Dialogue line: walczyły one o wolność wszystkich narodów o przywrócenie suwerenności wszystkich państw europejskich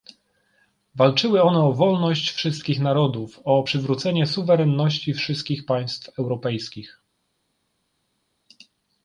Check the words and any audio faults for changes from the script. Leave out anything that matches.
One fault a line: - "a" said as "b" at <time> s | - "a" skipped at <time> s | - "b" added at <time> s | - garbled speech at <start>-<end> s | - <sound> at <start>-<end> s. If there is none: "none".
none